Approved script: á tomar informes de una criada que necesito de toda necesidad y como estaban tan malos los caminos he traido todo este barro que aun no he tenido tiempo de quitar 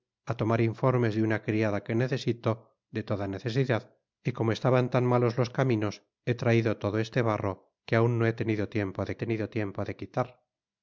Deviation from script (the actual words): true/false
true